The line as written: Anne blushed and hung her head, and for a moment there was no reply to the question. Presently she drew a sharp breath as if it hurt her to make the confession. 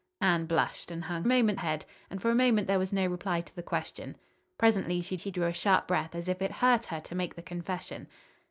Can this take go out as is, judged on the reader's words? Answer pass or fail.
fail